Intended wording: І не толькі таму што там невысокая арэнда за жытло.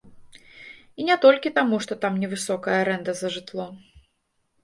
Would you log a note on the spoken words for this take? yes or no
no